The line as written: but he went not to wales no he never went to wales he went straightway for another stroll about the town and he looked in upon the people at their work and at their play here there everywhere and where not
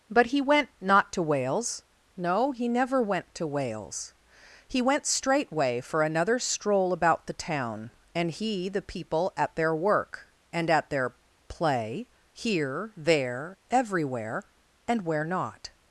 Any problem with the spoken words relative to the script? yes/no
yes